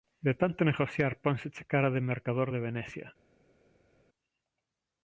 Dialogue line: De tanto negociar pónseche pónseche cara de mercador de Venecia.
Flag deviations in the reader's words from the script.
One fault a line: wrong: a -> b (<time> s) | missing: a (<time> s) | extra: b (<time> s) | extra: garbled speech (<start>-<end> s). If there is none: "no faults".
missing: pónseche (1.6 s)